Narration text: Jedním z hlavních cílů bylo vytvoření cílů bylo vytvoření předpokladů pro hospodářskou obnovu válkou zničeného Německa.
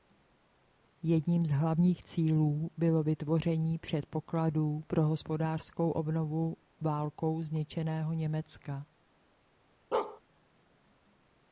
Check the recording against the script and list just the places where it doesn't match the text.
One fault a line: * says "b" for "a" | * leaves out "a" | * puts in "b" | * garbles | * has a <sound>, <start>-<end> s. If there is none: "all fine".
* leaves out "cílů bylo vytvoření"
* has a bark, 9.9-10.2 s